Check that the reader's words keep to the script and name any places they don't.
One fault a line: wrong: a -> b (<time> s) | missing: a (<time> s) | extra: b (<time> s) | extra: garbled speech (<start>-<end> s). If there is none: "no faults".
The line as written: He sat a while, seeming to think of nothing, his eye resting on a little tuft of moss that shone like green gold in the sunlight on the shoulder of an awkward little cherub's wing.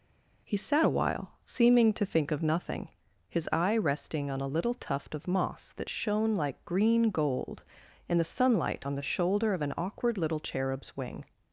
no faults